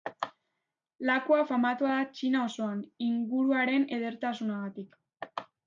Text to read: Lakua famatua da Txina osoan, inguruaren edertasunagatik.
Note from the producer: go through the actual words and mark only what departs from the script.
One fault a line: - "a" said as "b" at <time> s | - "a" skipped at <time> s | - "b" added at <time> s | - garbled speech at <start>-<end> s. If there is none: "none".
none